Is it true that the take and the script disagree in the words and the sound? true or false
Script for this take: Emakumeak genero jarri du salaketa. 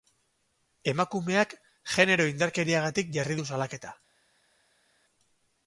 true